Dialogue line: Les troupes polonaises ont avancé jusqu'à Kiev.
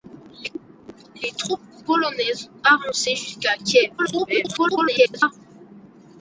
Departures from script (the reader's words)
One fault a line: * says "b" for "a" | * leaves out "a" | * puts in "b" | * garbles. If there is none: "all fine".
* leaves out "ont"
* garbles